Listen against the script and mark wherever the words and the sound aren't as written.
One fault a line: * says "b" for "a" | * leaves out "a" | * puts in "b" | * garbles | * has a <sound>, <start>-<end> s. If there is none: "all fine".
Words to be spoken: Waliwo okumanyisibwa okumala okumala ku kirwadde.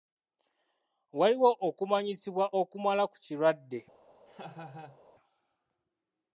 * leaves out "okumala"
* has a laugh, 4.3-5.0 s